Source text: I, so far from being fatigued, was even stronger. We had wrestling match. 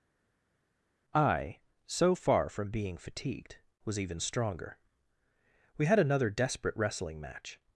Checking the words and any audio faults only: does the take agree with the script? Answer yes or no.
no